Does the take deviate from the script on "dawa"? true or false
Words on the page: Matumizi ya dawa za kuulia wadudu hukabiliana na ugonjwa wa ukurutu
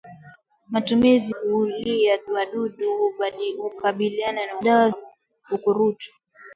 true